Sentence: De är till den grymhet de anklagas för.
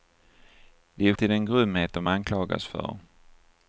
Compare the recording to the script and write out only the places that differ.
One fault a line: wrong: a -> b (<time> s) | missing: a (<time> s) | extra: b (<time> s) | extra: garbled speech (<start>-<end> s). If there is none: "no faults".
no faults